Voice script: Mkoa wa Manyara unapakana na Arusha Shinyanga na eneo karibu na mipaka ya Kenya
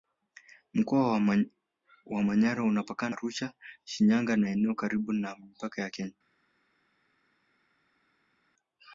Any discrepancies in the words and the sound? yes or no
yes